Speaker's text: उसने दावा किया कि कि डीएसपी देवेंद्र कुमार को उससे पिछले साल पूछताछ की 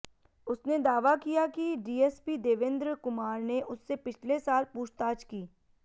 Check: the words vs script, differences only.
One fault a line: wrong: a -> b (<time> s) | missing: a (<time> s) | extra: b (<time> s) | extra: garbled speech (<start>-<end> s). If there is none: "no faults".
missing: कि (1.8 s)
wrong: को -> ने (3.4 s)